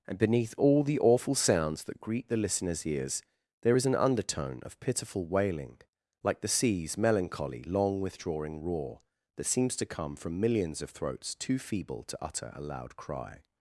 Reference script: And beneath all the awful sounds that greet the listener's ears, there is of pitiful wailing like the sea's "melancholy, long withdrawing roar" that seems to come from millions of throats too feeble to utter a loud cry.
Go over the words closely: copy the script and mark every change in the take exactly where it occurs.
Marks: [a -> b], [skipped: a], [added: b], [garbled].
And beneath all the awful sounds that greet the listener's ears, there is [added: an undertone] of pitiful wailing like the sea's "melancholy, long withdrawing roar" that seems to come from millions of throats too feeble to utter a loud cry.